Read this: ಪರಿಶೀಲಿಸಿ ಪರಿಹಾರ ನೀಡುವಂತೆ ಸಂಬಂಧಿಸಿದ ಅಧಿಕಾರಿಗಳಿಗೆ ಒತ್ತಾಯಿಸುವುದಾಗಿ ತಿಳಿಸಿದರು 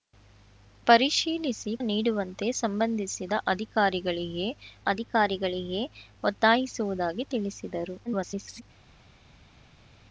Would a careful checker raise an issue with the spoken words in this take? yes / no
yes